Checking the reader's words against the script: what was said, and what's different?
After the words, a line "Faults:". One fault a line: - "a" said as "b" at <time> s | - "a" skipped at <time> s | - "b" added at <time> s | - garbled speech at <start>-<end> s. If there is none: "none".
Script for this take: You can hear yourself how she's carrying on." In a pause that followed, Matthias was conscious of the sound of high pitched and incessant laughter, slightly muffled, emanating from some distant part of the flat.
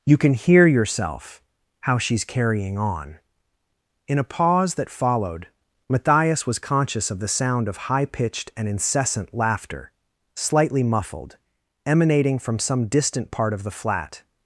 You can hear yourself how she's carrying on." In a pause that followed, Matthias was conscious of the sound of high pitched and incessant laughter, slightly muffled, emanating from some distant part of the flat.
Faults:
none